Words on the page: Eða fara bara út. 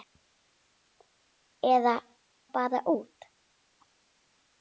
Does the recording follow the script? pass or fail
fail